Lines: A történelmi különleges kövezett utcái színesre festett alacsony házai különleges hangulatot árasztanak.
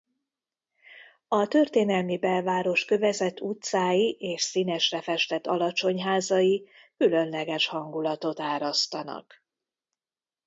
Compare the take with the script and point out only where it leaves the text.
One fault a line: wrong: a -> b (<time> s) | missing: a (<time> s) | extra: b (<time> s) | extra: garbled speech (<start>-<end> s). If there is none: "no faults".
wrong: különleges -> belváros (2.2 s)
extra: és (4.2 s)